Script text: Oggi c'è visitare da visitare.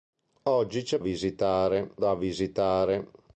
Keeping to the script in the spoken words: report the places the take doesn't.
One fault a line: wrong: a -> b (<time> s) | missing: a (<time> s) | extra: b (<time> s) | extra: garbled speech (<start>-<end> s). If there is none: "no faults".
no faults